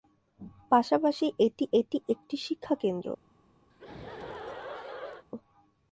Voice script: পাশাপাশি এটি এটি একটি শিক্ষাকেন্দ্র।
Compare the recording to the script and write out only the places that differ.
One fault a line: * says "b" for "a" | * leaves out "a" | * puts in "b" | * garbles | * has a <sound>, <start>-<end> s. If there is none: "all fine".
* has a laugh, 3.7-5.2 s